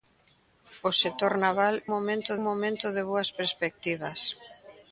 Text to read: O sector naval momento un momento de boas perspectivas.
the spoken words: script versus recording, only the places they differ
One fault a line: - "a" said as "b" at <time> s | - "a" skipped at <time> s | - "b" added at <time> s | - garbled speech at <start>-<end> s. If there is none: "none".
none